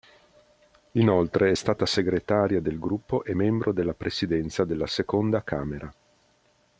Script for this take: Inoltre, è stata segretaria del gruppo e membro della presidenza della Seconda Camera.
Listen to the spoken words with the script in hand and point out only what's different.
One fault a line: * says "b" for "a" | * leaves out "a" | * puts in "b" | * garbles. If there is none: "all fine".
all fine